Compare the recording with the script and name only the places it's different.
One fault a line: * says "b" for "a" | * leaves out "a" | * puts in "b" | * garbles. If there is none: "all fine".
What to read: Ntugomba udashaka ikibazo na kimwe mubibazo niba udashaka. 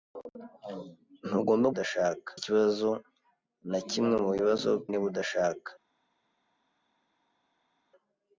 all fine